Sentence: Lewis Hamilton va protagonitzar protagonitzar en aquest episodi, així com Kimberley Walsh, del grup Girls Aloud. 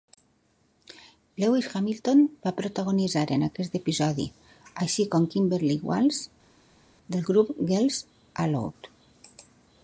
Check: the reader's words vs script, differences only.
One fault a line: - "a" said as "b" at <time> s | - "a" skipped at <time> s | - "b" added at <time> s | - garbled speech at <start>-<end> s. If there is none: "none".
- "protagonitzar" skipped at 3.2 s